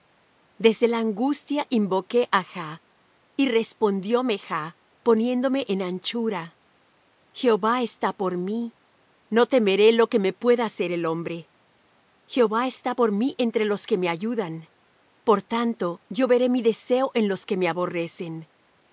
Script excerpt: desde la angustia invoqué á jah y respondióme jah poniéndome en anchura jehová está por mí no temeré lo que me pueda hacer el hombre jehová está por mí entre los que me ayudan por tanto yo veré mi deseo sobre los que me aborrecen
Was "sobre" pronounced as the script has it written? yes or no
no